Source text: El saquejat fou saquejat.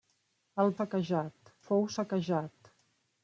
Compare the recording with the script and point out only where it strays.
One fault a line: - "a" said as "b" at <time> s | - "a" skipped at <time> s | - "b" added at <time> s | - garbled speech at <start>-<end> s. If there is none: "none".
none